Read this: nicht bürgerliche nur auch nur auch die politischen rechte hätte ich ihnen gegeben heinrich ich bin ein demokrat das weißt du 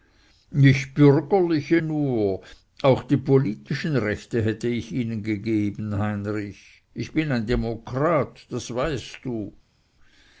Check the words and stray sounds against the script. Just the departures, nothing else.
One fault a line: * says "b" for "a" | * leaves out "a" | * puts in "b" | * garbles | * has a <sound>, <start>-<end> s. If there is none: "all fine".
* leaves out "nur auch"